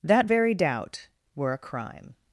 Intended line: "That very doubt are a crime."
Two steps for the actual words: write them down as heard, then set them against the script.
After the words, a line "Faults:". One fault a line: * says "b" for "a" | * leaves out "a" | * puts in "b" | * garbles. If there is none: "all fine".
"That very doubt were a crime."
Faults:
* says "were" for "are"